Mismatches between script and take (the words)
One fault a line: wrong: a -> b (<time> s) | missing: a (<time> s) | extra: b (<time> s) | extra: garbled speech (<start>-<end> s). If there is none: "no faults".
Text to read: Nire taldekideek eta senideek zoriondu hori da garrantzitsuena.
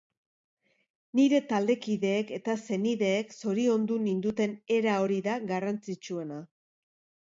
extra: ninduten era (4.1 s)